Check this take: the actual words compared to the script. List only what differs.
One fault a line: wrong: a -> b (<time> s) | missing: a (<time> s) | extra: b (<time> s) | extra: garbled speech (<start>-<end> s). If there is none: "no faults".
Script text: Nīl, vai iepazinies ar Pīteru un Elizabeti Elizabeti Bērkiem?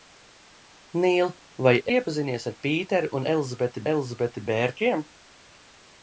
no faults